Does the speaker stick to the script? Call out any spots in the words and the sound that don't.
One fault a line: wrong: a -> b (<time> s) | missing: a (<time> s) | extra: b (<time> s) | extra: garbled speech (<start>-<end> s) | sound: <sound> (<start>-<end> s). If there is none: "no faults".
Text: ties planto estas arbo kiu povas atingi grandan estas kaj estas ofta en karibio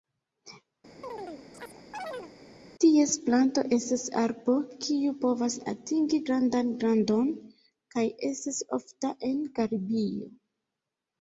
sound: chirp (1.0-2.3 s)
wrong: estas -> grandon (6.8 s)